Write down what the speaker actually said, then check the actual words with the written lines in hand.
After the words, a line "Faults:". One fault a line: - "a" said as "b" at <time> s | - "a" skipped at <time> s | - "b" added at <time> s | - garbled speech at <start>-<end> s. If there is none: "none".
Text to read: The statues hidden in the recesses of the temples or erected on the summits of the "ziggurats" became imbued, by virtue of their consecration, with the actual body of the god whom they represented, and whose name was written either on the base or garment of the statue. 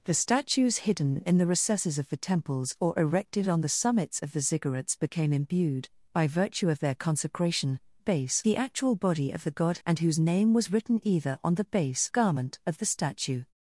The statues hidden in the recesses of the temples or erected on the summits of the "ziggurats" became imbued, by virtue of their consecration, base the actual body of the god and whose name was written either on the base garment of the statue.
Faults:
- "with" said as "base" at 8.0 s
- "whom they represented" skipped at 9.8 s
- "or" skipped at 12.1 s